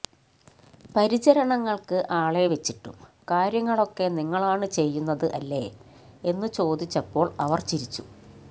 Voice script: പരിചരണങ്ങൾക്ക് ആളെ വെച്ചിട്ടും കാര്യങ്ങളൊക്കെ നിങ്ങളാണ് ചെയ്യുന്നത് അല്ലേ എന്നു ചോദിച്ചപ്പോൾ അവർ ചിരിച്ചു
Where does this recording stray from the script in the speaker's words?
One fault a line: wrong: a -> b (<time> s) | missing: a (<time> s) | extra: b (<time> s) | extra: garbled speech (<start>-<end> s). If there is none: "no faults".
no faults